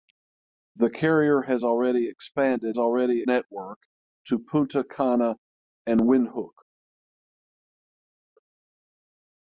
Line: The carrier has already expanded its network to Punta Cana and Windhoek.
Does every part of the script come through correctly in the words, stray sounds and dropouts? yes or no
no